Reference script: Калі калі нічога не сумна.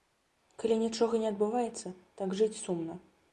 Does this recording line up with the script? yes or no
no